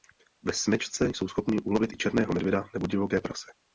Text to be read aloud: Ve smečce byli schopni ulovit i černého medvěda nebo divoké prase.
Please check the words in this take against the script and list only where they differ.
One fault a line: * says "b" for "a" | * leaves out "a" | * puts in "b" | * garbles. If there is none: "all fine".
* says "jsou" for "byli"